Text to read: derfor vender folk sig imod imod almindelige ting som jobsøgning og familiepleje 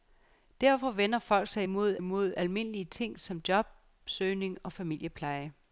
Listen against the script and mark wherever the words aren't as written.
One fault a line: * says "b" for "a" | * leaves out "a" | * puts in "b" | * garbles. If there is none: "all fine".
all fine